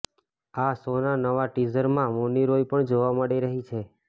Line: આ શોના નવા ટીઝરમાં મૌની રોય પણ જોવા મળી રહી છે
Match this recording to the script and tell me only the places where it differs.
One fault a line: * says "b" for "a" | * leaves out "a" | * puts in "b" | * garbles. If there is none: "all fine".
all fine